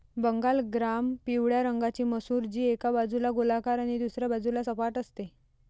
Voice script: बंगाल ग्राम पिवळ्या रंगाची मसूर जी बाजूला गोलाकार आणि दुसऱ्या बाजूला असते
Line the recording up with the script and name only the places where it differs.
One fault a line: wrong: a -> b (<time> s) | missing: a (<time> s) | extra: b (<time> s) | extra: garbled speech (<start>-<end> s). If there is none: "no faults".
extra: एका (2.6 s)
extra: सपाट (4.6 s)